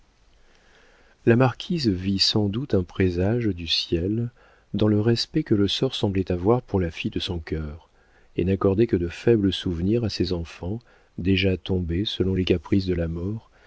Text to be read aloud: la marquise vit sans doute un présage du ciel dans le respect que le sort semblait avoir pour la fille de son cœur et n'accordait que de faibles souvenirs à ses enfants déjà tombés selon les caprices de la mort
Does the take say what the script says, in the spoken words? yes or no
yes